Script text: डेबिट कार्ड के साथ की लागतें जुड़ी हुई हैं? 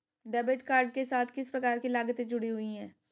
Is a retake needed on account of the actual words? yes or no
yes